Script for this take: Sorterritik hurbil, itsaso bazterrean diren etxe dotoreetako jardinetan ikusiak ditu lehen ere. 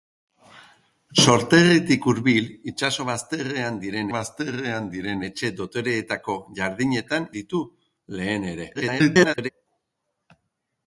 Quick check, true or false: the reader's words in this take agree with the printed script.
false